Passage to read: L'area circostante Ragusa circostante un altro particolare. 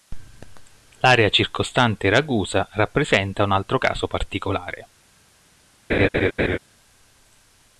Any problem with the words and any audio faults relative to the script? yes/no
yes